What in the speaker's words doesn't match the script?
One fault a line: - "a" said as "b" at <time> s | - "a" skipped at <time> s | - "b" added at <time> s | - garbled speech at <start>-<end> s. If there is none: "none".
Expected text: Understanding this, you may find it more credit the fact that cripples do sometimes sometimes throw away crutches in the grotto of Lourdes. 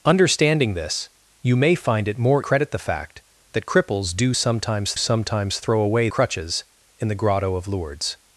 none